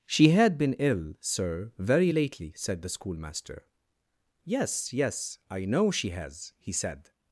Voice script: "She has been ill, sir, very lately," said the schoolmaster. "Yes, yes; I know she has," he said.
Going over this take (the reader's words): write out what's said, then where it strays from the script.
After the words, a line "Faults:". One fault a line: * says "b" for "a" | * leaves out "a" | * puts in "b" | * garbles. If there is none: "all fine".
"She had been ill, sir, very lately," said the schoolmaster. "Yes, yes; I know she has," he said.
Faults:
* says "had" for "has"